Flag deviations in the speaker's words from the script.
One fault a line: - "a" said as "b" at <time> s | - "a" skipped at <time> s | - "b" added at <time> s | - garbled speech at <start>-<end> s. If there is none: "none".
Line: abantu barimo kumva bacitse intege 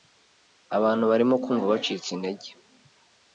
none